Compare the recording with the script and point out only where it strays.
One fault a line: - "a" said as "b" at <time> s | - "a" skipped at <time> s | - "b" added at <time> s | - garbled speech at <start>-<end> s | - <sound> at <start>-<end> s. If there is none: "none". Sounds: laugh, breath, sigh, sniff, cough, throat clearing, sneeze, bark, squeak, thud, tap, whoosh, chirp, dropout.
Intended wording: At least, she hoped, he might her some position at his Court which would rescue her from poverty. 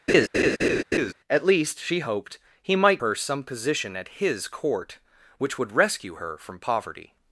- laugh at 0.1-1.1 s